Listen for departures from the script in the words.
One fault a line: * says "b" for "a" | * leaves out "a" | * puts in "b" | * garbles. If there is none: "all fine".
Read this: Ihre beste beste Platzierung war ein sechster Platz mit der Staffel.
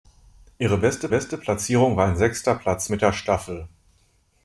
all fine